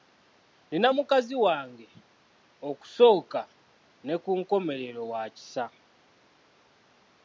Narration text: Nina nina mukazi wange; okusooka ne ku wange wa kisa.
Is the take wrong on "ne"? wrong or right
right